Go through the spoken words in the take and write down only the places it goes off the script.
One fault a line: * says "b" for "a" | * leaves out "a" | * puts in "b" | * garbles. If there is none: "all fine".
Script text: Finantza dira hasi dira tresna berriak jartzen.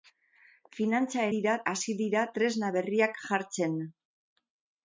all fine